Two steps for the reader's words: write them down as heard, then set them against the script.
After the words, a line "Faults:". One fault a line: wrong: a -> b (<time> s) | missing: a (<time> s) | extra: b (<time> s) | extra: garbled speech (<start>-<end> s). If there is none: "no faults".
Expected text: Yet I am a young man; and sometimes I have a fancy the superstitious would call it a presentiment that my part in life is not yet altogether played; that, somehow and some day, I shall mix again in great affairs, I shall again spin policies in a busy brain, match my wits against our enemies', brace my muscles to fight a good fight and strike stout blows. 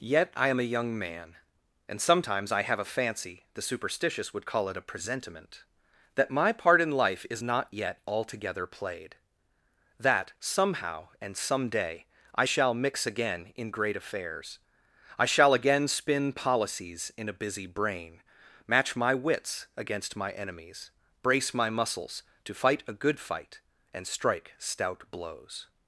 Yet I am a young man; and sometimes I have a fancy the superstitious would call it a presentiment that my part in life is not yet altogether played; that, somehow and some day, I shall mix again in great affairs, I shall again spin policies in a busy brain, match my wits against my enemies', brace my muscles to fight a good fight and strike stout blows.
Faults:
wrong: our -> my (20.2 s)